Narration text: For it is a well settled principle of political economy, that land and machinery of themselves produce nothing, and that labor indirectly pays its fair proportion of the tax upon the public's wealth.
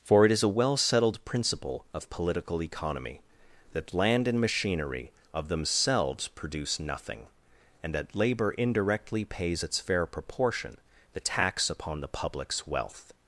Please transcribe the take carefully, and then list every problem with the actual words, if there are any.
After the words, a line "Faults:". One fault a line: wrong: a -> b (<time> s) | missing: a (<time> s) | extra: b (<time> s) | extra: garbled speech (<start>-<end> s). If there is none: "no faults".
For it is a well settled principle of political economy, that land and machinery of themselves produce nothing, and that labor indirectly pays its fair proportion the tax upon the public's wealth.
Faults:
missing: of (10.8 s)